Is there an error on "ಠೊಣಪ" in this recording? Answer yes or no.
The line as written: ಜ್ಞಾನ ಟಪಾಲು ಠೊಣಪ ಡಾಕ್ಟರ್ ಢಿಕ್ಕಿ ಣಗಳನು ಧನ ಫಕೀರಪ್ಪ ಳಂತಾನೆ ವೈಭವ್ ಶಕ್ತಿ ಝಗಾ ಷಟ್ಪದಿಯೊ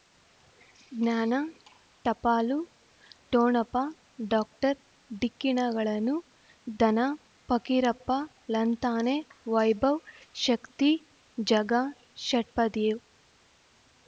no